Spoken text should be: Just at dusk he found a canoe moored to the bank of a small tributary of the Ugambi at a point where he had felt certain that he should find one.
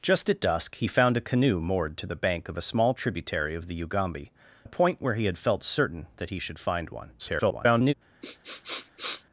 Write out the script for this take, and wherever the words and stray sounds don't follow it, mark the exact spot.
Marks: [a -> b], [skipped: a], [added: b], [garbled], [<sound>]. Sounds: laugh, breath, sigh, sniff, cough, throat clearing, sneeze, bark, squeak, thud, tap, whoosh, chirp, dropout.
Just at dusk he found a canoe moored to the bank of a small tributary of the Ugambi [skipped: at] a point where he had felt certain that he should find one. [garbled] [sniff]